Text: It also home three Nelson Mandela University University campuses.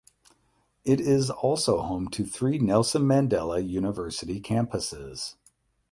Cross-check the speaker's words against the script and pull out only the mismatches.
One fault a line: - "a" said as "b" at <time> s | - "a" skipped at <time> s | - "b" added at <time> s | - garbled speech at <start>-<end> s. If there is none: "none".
- "is" added at 1.0 s
- "to" added at 2.1 s
- "University" skipped at 4.4 s